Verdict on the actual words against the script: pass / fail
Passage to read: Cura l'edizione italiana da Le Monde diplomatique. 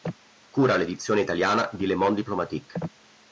fail